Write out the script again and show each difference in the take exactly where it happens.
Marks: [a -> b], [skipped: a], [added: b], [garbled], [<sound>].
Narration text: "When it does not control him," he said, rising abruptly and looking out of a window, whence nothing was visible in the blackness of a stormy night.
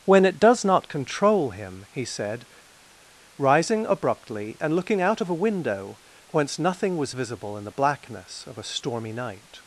"When it does not control him," he said, rising abruptly and looking out of a window, whence nothing was visible in the blackness of a stormy night.